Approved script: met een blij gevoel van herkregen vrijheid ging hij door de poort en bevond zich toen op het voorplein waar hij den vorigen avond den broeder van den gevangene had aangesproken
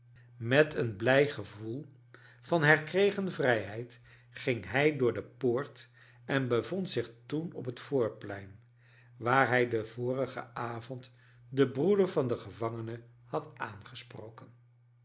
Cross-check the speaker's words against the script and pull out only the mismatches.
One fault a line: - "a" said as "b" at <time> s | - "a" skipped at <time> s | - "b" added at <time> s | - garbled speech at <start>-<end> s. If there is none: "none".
none